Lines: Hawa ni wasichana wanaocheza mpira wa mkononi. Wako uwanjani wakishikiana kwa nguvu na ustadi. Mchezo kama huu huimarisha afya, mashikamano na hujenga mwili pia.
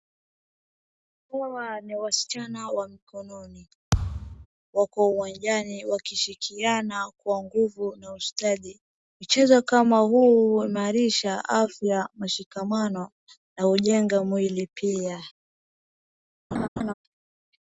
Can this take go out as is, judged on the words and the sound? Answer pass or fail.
fail